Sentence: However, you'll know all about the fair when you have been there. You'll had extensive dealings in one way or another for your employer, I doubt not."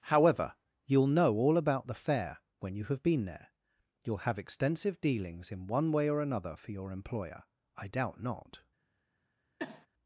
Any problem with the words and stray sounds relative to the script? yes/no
yes